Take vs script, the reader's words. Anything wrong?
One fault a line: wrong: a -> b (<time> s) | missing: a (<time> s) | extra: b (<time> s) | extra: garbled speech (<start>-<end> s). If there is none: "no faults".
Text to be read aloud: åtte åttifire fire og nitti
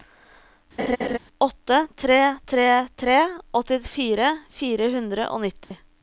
extra: tre tre tre (2.0 s)
extra: hundre (5.0 s)